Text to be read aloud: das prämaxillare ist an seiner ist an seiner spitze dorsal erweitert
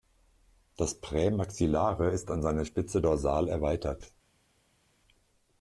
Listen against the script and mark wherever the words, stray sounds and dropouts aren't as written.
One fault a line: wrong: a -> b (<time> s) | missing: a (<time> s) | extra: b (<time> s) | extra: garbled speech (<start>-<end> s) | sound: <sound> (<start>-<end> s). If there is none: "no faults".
missing: ist an seiner (2.6 s)